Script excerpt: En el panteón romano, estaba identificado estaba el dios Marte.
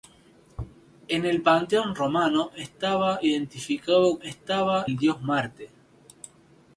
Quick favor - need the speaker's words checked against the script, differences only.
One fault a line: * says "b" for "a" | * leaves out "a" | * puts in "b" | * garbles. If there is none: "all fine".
all fine